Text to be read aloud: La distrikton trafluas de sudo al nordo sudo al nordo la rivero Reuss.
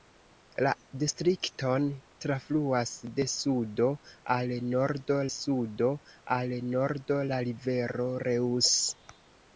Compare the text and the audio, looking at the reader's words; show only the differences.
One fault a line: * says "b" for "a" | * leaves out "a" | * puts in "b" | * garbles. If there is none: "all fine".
all fine